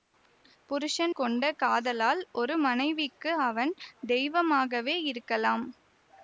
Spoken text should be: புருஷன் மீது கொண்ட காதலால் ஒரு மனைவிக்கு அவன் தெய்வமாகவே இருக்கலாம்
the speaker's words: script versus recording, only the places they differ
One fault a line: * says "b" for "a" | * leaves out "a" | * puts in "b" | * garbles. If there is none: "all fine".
* leaves out "மீது"